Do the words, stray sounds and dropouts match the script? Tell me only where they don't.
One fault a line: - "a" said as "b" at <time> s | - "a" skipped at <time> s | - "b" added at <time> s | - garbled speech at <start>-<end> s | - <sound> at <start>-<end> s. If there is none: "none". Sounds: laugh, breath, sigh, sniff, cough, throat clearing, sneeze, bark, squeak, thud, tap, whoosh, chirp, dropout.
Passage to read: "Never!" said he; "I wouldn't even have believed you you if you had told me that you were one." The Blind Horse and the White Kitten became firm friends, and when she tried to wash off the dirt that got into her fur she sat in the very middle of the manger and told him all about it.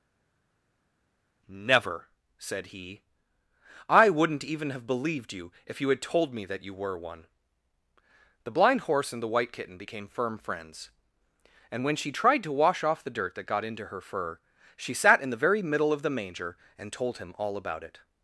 - "you" skipped at 5.5 s